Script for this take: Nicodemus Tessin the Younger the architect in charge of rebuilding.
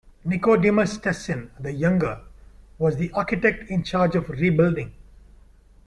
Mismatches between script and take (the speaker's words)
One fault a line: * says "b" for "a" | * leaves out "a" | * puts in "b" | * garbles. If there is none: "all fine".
* puts in "was"